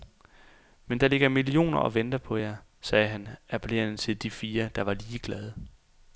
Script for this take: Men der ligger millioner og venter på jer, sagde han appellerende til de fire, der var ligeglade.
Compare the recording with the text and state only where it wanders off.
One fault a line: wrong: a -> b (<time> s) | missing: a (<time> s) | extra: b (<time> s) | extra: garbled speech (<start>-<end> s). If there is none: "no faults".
no faults